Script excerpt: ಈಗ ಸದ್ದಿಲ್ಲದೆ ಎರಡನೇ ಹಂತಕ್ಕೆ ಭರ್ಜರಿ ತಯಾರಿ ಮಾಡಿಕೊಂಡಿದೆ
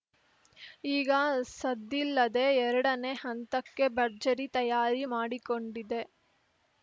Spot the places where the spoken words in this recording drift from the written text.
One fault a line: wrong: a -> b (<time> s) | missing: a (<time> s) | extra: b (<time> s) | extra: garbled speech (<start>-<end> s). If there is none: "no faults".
no faults